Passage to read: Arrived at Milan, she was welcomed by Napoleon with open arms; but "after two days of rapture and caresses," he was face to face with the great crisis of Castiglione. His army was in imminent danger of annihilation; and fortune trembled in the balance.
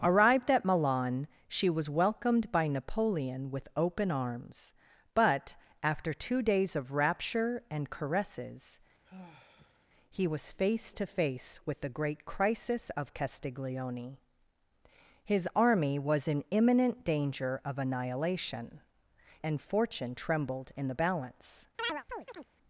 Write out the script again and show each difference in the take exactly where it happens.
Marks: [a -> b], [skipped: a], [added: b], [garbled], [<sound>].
Arrived at Milan, she was welcomed by Napoleon with open arms; but "after two days of rapture and caresses," [sigh] he was face to face with the great crisis of Castiglione. His army was in imminent danger of annihilation; and fortune trembled in the balance. [chirp]